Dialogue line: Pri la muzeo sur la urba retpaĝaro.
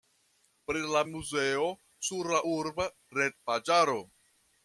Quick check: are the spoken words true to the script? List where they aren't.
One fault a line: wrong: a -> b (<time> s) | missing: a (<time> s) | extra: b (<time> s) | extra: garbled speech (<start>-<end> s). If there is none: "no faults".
no faults